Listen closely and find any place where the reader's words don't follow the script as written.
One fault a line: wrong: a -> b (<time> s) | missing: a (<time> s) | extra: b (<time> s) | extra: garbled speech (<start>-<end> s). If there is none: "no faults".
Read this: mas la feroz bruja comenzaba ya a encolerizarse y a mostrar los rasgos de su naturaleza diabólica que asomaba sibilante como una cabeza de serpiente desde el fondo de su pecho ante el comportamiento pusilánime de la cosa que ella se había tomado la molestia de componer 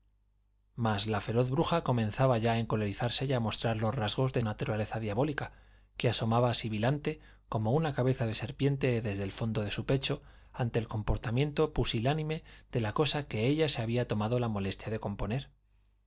missing: su (4.4 s)